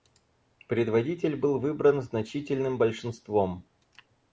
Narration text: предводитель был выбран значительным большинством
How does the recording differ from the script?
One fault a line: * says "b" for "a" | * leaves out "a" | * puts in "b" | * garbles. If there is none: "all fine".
all fine